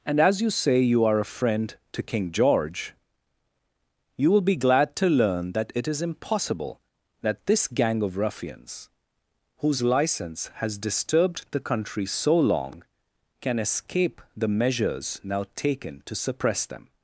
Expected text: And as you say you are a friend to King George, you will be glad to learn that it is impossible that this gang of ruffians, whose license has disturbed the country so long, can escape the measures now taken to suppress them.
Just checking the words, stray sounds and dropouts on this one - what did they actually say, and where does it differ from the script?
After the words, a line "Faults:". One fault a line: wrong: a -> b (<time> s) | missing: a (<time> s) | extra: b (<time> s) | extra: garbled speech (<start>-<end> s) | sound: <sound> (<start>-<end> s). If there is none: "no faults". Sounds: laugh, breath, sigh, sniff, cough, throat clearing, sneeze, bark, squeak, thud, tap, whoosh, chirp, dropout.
And as you say you are a friend to King George, you will be glad to learn that it is impossible that this gang of ruffians, whose license has disturbed the country so long, can escape the measures now taken to suppress them.
Faults:
no faults